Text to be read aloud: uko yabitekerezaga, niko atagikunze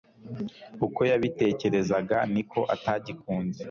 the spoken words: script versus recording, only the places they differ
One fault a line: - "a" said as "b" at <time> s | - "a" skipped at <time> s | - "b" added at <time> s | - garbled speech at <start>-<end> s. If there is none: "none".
none